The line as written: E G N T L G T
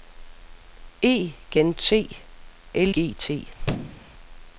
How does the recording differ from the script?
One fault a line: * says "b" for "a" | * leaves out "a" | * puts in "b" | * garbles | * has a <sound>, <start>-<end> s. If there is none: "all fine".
* has a thud, 3.6-4.1 s